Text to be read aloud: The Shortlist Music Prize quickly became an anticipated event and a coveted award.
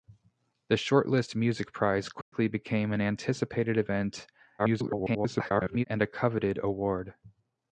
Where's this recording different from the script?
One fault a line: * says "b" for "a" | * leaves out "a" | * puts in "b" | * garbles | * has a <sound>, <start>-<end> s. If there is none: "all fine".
* has a dropout, 2.2-2.3 s
* garbles